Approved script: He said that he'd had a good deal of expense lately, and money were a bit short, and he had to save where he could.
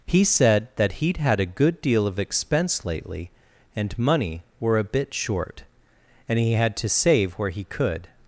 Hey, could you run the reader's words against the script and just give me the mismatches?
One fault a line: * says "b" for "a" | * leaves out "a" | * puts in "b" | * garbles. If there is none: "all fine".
all fine